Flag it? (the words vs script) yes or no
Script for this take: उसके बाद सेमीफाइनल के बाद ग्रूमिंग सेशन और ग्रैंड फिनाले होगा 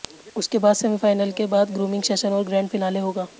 no